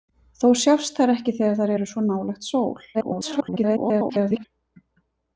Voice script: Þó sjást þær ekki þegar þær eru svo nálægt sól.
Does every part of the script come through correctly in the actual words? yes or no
no